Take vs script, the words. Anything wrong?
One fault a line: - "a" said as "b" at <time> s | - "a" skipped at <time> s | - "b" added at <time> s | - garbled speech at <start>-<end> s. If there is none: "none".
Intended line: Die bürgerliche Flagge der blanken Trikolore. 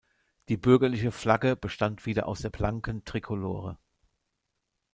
- "bestand wieder aus" added at 1.6 s